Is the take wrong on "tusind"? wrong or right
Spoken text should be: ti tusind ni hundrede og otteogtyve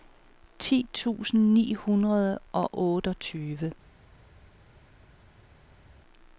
right